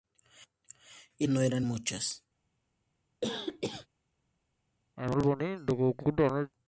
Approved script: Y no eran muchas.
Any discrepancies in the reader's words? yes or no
no